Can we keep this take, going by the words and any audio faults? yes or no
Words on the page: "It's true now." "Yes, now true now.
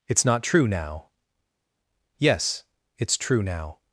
no